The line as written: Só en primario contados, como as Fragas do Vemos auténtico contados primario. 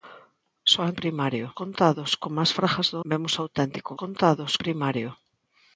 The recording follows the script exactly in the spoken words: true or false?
true